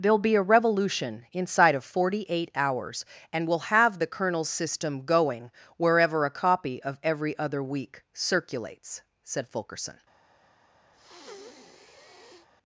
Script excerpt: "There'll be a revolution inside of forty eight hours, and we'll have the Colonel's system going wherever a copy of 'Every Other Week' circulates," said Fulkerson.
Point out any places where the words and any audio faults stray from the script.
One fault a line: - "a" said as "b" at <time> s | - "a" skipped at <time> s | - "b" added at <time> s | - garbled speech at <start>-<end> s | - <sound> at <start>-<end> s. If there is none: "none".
- breath at 10.9-12.5 s